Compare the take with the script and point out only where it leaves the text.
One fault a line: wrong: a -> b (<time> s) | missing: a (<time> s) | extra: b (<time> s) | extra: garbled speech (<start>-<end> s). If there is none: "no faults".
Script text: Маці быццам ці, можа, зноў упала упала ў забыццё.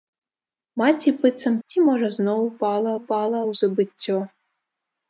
no faults